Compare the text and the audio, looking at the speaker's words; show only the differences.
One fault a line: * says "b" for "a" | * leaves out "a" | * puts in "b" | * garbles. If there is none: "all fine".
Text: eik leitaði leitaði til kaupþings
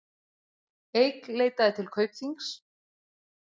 * leaves out "leitaði"